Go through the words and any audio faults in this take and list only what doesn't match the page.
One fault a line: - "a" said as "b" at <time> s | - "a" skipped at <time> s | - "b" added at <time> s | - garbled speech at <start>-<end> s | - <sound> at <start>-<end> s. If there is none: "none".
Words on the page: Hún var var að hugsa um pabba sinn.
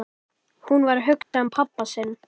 - "var" skipped at 1.0 s
- dropout at 1.2-1.3 s